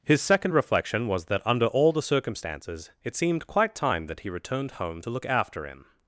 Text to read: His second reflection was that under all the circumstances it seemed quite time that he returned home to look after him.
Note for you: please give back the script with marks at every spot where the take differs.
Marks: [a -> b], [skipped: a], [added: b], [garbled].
His second reflection was that under all the circumstances it seemed quite time that he returned home to look after him.